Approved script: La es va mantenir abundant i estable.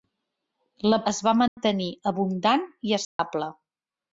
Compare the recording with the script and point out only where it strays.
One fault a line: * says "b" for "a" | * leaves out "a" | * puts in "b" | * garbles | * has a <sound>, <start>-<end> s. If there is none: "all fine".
* has a dropout, 1.5-1.6 s
* has a dropout, 3.0-3.2 s